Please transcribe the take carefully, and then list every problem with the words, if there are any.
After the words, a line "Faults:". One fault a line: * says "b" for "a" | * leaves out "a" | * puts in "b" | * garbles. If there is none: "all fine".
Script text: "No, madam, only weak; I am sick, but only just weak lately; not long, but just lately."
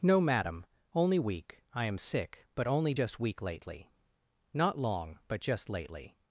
"No, madam, only weak; I am sick, but only just weak lately; not long, but just lately."
Faults:
all fine